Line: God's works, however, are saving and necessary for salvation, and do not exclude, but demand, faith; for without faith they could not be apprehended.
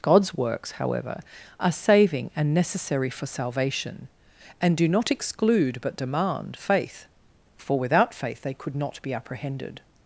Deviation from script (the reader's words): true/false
false